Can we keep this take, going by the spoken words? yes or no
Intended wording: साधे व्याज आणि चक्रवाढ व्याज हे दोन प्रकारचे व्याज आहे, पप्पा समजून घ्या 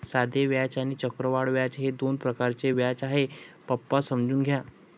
yes